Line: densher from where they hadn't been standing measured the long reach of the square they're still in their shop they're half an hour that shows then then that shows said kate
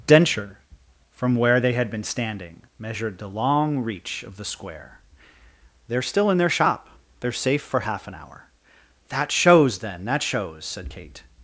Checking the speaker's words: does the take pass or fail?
fail